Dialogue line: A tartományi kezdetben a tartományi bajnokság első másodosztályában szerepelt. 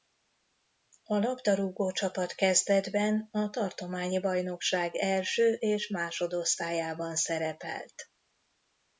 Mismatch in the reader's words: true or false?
true